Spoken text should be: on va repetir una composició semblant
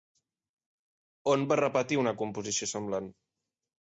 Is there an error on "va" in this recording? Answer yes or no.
no